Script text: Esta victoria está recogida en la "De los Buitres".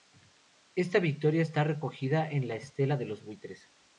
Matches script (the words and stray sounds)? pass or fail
fail